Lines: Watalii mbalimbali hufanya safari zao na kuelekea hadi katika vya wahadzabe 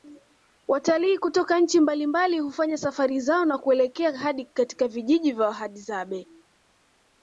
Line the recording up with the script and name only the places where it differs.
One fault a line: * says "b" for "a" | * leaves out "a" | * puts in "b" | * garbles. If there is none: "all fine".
* puts in "kutoka nchi"
* puts in "vijiji"